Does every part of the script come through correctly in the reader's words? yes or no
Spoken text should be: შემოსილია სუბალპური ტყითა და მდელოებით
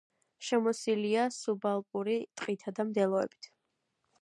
yes